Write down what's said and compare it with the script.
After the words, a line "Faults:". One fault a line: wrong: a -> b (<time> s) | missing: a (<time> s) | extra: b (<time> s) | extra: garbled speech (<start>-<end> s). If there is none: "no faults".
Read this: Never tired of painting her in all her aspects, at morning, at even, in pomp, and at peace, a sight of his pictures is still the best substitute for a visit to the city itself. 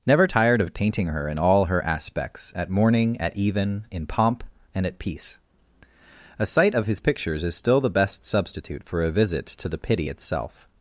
Never tired of painting her in all her aspects, at morning, at even, in pomp, and at peace, a sight of his pictures is still the best substitute for a visit to the pity itself.
Faults:
wrong: city -> pity (9.8 s)